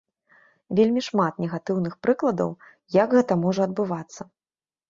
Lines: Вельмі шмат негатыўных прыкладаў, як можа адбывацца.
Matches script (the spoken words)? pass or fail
fail